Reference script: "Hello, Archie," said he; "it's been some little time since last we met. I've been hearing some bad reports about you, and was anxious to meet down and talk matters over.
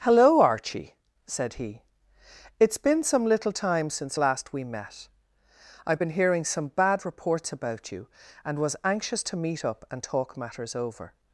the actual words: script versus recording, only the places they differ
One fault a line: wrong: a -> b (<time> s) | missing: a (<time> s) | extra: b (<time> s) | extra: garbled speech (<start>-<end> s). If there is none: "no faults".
wrong: down -> up (9.6 s)